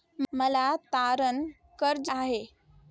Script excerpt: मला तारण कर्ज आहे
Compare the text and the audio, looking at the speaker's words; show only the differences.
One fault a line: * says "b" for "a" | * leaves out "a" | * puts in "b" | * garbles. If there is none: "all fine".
all fine